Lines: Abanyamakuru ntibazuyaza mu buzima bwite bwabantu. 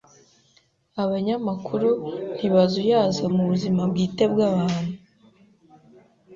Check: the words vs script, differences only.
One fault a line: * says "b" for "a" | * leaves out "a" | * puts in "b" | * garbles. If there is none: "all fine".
all fine